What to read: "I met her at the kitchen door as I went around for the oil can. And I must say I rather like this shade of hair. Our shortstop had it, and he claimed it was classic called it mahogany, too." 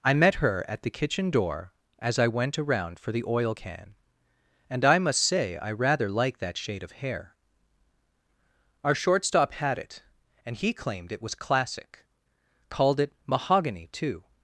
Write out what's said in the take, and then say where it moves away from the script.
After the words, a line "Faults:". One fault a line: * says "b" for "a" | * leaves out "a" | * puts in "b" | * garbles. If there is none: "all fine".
"I met her at the kitchen door as I went around for the oil can. And I must say I rather like that shade of hair. Our shortstop had it, and he claimed it was classic called it mahogany, too."
Faults:
* says "that" for "this"